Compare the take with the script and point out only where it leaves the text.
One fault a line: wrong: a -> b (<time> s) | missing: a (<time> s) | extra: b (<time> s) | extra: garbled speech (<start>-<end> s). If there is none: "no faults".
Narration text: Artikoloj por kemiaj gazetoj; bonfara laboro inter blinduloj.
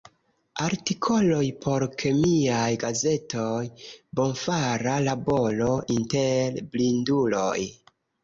no faults